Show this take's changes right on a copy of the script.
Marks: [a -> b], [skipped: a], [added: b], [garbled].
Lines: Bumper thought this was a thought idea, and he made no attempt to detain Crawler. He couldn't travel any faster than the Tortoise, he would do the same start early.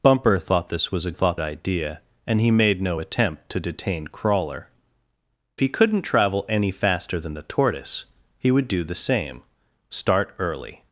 Bumper thought this was a thought idea, and he made no attempt to detain Crawler. He couldn't travel any faster than the Tortoise, he would do the same start early.